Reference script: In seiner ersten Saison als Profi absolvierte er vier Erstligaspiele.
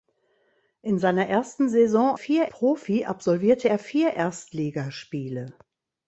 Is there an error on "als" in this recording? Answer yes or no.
yes